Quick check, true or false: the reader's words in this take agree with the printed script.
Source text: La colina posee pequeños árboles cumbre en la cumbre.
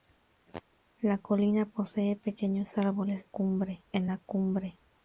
true